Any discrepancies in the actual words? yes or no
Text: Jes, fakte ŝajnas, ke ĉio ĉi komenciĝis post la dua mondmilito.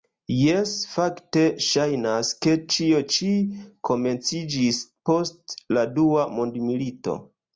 no